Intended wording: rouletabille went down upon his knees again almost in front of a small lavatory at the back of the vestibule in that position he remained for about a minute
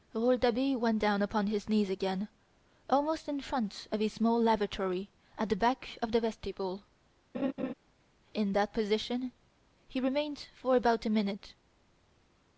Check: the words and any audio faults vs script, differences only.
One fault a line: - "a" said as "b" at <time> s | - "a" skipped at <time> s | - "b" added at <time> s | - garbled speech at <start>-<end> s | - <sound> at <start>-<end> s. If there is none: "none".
- laugh at 7.3-7.7 s